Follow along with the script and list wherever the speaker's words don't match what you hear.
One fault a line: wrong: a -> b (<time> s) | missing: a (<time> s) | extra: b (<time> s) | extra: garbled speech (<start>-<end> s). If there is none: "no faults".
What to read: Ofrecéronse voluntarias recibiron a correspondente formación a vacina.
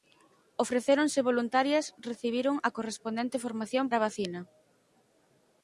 no faults